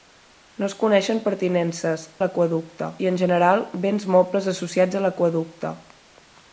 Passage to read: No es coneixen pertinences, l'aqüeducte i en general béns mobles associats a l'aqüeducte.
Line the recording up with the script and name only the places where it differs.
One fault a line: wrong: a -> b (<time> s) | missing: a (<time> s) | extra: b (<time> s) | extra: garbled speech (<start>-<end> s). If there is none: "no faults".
no faults